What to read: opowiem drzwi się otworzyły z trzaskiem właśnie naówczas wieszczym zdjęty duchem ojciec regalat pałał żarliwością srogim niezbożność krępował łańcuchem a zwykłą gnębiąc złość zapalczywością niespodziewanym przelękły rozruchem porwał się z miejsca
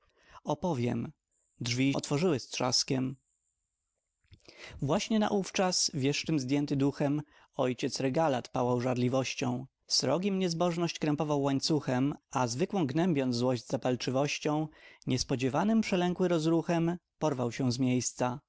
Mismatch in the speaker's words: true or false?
true